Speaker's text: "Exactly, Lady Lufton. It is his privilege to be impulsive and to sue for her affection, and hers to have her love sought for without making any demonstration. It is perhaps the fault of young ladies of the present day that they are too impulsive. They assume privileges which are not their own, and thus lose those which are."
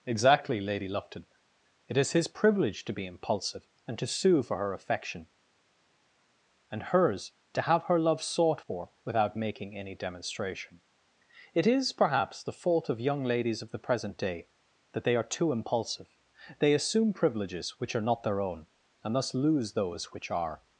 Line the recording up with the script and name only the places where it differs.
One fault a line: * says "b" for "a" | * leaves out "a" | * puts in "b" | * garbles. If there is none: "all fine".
all fine